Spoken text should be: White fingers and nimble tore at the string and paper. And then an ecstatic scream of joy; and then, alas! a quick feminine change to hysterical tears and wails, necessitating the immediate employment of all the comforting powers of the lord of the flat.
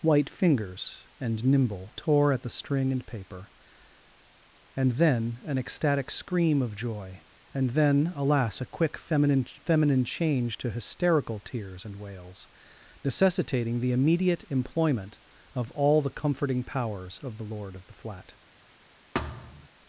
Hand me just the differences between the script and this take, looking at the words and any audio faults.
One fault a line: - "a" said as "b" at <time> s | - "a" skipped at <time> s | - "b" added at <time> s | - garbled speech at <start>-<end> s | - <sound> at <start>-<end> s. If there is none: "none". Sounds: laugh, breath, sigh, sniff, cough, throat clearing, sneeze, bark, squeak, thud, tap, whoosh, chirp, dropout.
- "feminine" added at 9.7 s
- thud at 19.1-19.7 s